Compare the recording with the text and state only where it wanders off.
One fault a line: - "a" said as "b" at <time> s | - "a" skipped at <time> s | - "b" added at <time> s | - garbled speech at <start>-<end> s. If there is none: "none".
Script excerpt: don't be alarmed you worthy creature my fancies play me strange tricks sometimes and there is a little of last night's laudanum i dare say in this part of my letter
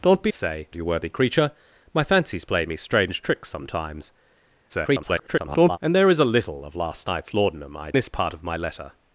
- "alarmed" said as "say" at 0.3 s
- garbled speech at 4.7-5.8 s
- "dare say in" skipped at 7.9 s